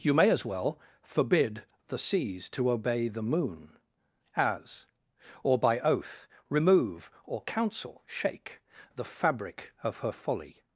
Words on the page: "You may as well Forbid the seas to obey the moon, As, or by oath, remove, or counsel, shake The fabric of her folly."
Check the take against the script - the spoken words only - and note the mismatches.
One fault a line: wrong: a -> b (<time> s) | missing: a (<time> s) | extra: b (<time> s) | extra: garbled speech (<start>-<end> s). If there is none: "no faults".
no faults